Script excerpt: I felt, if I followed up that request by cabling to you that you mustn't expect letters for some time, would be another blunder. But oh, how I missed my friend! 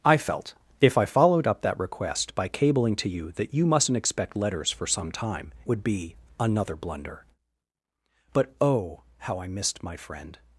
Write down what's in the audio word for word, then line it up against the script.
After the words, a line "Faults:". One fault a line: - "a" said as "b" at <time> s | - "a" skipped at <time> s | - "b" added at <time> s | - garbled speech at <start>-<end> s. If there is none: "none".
I felt, if I followed up that request by cabling to you that you mustn't expect letters for some time, would be another blunder. But oh, how I missed my friend!
Faults:
none